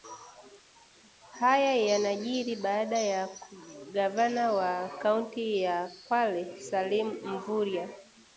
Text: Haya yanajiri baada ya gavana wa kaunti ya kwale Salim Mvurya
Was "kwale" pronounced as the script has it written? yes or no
yes